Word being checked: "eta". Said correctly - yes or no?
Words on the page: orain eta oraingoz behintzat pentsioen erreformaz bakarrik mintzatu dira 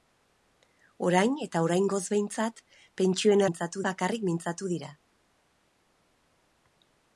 yes